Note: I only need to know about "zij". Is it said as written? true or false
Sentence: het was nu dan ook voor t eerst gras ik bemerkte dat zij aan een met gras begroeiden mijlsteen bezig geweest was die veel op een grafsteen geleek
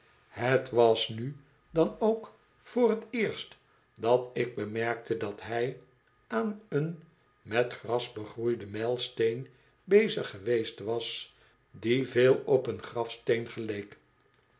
false